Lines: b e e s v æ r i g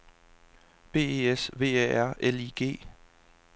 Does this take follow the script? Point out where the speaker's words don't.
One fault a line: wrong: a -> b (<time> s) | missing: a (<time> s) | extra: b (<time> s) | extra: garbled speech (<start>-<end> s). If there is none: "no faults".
missing: e (1.3 s)
extra: l (2.2 s)